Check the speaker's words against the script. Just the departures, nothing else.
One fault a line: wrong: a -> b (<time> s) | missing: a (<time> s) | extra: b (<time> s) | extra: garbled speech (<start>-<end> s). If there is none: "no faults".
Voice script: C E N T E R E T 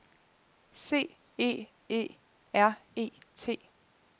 missing: N T (1.7 s)